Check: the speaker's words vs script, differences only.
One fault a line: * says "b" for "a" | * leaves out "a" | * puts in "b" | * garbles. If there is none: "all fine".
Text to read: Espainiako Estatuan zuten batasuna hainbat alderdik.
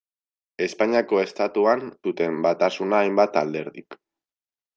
all fine